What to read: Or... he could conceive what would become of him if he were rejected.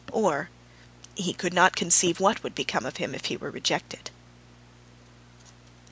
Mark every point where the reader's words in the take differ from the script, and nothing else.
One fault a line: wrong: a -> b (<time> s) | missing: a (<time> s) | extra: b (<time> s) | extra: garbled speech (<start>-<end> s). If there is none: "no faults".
extra: not (1.5 s)